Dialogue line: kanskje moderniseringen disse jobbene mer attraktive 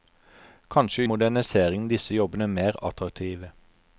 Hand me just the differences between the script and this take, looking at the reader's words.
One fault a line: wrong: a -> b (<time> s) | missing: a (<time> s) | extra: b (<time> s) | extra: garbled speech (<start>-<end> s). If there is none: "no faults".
no faults